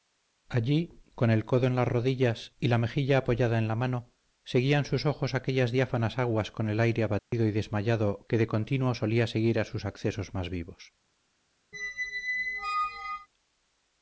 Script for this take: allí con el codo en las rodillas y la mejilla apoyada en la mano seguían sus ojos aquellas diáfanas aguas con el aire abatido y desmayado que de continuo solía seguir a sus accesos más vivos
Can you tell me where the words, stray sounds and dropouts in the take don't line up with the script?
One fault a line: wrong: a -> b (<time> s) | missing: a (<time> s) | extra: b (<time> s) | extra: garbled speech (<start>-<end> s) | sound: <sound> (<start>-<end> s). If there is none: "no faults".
sound: dropout (7.2-7.3 s)
sound: squeak (11.7-13.3 s)